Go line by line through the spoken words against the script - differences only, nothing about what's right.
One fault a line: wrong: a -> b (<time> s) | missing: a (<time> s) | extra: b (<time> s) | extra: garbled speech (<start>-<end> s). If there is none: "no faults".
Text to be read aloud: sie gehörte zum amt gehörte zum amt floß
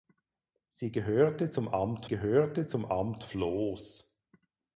no faults